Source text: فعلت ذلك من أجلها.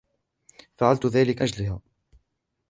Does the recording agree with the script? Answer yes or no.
no